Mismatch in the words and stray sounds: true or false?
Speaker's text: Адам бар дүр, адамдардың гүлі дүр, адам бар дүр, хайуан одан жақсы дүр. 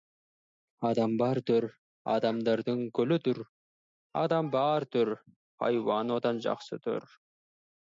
false